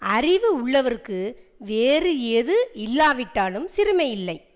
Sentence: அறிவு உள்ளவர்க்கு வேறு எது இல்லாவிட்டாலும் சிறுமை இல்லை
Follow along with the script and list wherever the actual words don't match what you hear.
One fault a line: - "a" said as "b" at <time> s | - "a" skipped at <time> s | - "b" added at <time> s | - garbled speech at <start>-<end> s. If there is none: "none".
none